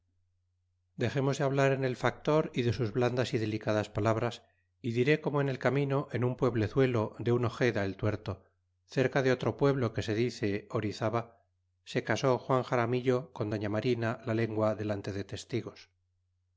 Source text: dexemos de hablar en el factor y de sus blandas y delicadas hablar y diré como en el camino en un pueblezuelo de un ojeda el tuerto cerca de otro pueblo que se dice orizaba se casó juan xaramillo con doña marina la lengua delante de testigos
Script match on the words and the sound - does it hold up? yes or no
no